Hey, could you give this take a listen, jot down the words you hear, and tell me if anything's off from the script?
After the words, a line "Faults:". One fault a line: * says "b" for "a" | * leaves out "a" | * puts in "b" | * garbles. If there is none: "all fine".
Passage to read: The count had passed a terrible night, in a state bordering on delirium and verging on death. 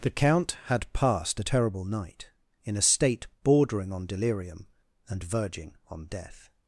The count had passed a terrible night, in a state bordering on delirium and verging on death.
Faults:
all fine